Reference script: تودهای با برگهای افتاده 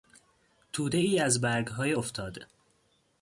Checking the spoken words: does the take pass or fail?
fail